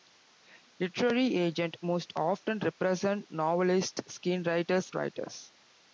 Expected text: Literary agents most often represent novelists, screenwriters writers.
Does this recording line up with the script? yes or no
yes